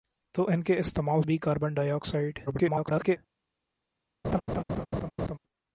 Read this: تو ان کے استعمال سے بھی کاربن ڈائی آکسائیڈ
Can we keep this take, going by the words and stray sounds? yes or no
no